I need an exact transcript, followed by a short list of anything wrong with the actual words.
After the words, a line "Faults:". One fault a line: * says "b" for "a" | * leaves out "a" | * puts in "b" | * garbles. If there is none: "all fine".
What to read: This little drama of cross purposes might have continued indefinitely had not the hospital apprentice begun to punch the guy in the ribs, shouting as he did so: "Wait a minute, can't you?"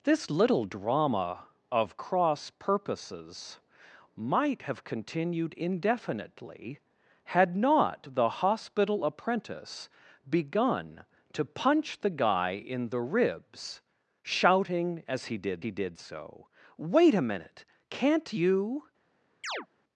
This little drama of cross purposes might have continued indefinitely had not the hospital apprentice begun to punch the guy in the ribs, shouting as he did he did so: "Wait a minute, can't you?"
Faults:
* puts in "he did"